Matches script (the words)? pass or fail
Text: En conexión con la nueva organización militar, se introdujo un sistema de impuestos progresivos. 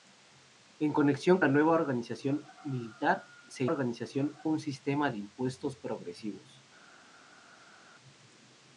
fail